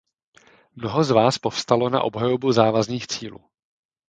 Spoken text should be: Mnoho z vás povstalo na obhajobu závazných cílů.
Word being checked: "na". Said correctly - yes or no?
yes